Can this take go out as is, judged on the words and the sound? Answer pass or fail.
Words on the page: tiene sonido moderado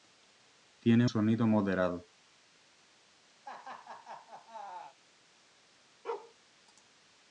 fail